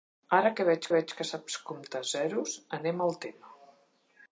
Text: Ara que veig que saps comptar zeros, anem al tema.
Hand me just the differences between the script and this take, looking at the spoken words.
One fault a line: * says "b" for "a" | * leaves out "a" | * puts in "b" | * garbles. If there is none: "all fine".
* puts in "veig"